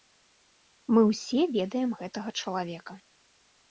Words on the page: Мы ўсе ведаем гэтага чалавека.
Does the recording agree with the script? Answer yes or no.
yes